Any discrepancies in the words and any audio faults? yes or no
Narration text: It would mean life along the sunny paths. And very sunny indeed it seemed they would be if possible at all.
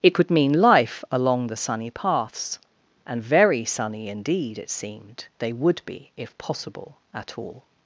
yes